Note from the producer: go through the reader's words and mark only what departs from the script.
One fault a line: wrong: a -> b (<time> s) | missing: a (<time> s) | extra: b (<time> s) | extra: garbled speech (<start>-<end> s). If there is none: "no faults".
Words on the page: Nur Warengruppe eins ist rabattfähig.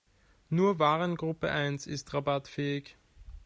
no faults